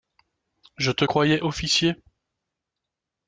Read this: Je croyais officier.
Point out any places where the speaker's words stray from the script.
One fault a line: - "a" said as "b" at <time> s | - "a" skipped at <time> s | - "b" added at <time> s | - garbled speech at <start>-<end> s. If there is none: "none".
- "te" added at 0.9 s